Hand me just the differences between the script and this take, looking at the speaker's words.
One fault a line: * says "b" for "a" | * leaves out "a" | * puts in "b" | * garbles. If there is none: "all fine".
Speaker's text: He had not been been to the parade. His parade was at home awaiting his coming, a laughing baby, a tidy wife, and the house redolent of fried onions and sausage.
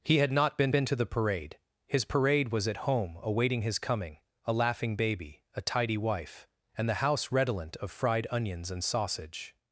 all fine